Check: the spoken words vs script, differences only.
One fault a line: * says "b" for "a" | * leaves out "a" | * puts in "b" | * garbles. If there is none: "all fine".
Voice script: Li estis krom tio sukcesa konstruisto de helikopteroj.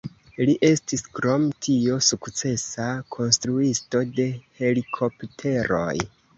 all fine